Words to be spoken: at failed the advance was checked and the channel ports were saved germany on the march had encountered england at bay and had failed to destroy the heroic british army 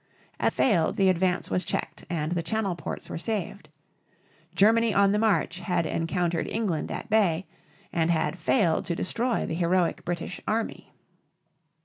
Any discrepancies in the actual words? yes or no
no